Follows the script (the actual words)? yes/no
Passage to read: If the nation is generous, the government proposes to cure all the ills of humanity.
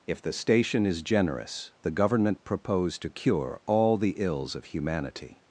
no